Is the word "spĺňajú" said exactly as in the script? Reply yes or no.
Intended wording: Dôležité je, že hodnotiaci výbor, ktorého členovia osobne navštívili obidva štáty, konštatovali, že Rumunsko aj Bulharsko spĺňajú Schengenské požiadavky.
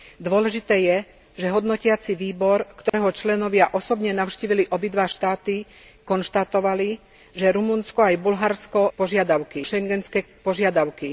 no